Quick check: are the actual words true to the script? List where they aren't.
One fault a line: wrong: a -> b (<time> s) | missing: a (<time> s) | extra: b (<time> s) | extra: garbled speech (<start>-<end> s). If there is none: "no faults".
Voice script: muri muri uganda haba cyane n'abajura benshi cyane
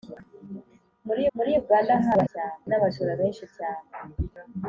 no faults